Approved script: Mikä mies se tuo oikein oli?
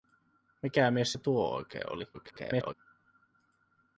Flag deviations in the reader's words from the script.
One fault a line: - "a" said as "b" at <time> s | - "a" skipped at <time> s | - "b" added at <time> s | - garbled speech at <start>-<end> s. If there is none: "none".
- garbled speech at 2.1-2.7 s